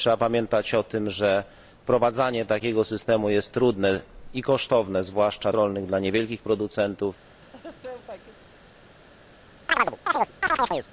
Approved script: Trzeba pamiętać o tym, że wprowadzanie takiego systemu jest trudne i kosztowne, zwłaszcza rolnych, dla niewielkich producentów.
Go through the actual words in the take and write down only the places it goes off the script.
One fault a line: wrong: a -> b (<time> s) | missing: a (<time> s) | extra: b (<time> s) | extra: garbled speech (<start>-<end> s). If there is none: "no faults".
no faults